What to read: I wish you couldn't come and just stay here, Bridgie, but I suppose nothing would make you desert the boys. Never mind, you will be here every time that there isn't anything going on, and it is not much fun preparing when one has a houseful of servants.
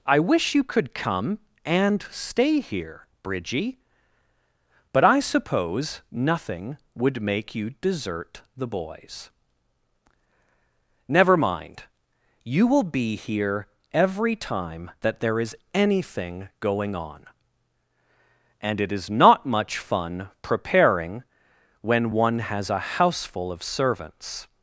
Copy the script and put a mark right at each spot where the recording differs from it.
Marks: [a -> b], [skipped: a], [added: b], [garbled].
I wish you [couldn't -> could] come and [skipped: just] stay here, Bridgie, but I suppose nothing would make you desert the boys. Never mind, you will be here every time that there [isn't -> is] anything going on, and it is not much fun preparing when one has a houseful of servants.